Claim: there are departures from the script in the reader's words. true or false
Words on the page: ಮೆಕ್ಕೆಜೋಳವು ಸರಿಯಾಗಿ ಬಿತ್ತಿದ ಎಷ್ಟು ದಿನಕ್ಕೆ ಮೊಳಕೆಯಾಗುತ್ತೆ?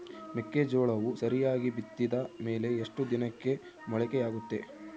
true